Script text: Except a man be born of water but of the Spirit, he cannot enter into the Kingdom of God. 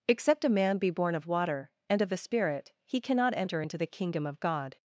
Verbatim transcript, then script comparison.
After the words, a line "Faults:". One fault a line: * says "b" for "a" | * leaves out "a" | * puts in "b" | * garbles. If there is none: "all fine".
Except a man be born of water and of the Spirit, he cannot enter into the Kingdom of God.
Faults:
* says "and" for "but"